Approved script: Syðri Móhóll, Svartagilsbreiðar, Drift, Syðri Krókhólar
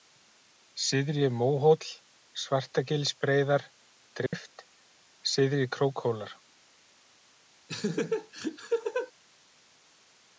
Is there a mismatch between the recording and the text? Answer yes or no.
no